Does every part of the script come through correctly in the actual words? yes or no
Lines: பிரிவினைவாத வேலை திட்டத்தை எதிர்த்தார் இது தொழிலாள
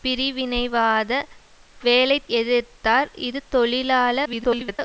no